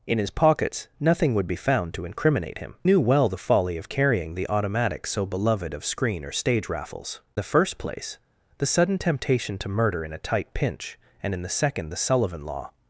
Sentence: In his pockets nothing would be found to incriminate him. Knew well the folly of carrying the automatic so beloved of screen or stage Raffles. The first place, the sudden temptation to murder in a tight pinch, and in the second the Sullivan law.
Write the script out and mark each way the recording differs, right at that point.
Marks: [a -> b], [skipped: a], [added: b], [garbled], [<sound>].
In his pockets nothing would be found to incriminate him. Knew well the folly of carrying the automatic so beloved of screen or stage Raffles. The first place, the sudden temptation to murder in a tight pinch, and in the second the Sullivan law.